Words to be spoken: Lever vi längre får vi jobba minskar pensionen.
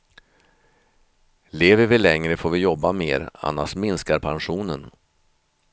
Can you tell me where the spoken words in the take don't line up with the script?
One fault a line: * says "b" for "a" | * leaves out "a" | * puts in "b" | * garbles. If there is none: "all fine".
* puts in "mer annars"